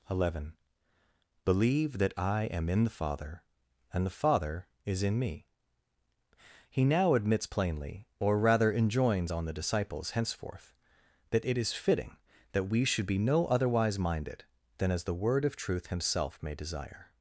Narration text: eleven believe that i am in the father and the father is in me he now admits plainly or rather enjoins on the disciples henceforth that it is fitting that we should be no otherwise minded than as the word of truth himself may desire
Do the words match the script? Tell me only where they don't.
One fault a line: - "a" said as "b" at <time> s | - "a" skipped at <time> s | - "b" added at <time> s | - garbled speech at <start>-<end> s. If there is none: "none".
none